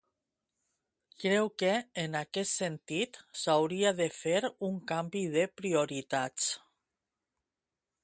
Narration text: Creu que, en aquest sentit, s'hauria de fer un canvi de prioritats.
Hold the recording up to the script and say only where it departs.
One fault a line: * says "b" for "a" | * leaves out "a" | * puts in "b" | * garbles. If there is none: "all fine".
all fine